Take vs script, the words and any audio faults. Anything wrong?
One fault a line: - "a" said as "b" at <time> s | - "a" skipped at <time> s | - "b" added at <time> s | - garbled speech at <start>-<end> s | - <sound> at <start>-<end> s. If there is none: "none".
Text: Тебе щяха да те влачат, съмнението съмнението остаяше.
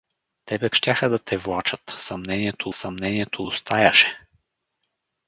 none